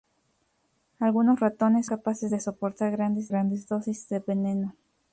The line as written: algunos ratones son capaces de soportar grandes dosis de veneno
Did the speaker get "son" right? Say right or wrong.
wrong